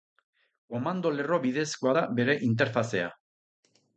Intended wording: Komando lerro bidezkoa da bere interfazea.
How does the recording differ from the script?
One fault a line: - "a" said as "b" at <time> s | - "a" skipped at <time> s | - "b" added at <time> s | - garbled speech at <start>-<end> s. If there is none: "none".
none